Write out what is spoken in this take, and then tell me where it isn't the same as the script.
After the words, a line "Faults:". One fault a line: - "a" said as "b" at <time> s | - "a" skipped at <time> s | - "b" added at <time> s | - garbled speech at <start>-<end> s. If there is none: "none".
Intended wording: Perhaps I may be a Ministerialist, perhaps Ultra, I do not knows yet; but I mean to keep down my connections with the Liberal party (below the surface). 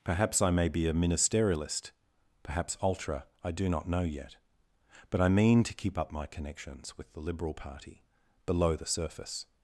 Perhaps I may be a Ministerialist, perhaps Ultra, I do not know yet; but I mean to keep up my connections with the Liberal party (below the surface).
Faults:
- "knows" said as "know" at 3.9 s
- "down" said as "up" at 6.0 s